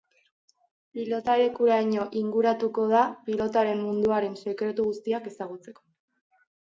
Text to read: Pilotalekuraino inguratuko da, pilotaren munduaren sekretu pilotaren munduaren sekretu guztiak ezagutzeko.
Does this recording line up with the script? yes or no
no